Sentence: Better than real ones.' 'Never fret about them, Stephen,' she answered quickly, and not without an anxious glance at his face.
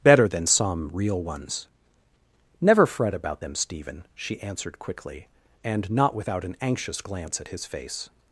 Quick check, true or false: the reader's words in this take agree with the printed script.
false